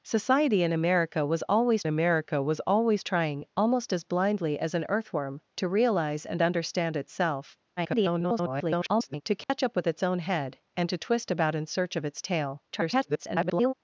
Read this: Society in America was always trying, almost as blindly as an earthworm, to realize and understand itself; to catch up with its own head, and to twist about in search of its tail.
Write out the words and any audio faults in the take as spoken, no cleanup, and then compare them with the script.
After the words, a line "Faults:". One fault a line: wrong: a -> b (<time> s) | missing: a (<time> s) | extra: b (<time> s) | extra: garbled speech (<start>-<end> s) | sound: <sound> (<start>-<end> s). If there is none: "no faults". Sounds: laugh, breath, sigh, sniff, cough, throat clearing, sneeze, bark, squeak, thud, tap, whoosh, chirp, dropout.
Society in America was always America was always trying, almost as blindly as an earthworm, to realize and understand itself; [garbled] to catch up with its own head, and to twist about in search of its tail. [garbled]
Faults:
extra: America was always (1.9 s)
extra: garbled speech (7.8-9.2 s)
sound: dropout (9.4-9.5 s)
extra: garbled speech (12.7-13.7 s)